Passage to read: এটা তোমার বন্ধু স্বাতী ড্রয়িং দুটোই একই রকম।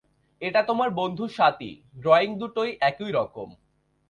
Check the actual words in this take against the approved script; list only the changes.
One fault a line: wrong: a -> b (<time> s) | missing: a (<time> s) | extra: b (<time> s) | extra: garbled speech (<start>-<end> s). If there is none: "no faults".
no faults